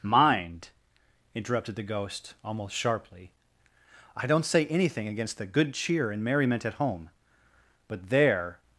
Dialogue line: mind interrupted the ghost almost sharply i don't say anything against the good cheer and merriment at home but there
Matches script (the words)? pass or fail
pass